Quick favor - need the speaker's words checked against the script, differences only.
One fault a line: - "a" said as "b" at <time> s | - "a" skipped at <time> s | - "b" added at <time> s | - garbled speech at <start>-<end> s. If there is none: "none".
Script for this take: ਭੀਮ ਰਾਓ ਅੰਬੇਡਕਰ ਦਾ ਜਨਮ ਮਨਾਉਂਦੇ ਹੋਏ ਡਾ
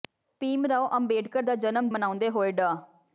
none